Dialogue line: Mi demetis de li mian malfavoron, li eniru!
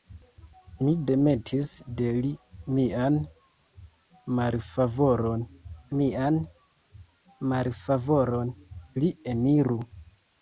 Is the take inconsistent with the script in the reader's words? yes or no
yes